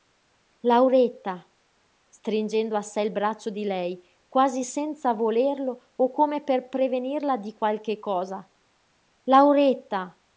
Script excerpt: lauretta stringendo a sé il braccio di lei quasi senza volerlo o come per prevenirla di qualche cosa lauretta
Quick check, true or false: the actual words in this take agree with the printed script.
true